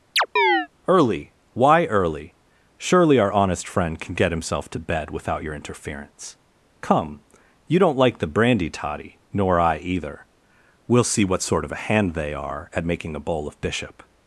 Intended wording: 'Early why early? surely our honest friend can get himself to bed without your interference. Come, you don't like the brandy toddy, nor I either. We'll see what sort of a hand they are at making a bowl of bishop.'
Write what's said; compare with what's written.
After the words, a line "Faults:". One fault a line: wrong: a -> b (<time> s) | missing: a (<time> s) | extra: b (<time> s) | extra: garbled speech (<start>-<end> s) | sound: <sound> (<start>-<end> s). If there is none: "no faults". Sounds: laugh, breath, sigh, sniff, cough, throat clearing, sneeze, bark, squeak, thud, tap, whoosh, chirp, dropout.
'Early why early? surely our honest friend can get himself to bed without your interference. Come, you don't like the brandy toddy, nor I either. We'll see what sort of a hand they are at making a bowl of bishop.'
Faults:
sound: chirp (0.2-0.7 s)